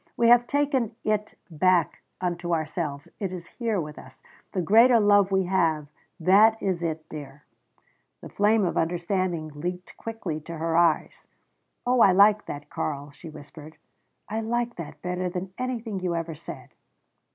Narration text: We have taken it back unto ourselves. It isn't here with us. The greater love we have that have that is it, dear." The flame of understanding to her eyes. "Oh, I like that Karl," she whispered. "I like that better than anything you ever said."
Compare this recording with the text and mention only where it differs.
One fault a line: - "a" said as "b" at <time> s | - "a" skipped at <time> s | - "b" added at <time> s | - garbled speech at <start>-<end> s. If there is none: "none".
- "isn't" said as "is" at 3.3 s
- "have that" skipped at 6.6 s
- "leaped quickly" added at 9.5 s